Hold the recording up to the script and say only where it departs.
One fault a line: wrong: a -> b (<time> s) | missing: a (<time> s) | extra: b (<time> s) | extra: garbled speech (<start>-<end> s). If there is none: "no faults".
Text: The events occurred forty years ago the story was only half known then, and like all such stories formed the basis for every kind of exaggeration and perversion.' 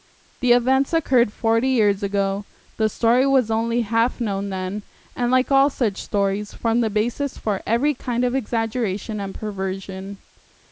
no faults